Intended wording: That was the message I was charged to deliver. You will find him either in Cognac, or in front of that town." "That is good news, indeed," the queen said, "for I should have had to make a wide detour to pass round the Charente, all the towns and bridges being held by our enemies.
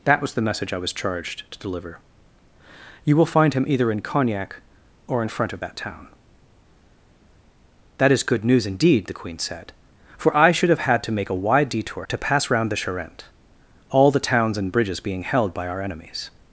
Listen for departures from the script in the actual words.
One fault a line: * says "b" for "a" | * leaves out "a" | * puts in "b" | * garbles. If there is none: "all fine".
all fine